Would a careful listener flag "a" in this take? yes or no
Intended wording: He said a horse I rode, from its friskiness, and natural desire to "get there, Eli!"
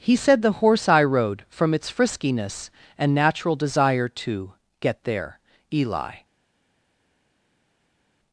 yes